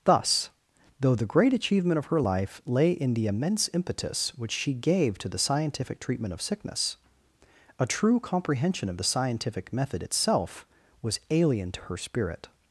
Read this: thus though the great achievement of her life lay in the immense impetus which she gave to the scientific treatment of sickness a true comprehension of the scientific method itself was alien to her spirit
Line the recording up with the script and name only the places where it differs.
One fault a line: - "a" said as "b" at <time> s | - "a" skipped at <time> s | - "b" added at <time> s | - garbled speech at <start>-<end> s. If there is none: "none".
none